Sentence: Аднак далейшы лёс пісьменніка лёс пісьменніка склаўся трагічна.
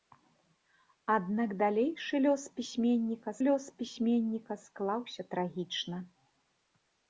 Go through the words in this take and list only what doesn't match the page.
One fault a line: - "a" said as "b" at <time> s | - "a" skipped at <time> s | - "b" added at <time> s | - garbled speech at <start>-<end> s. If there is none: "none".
none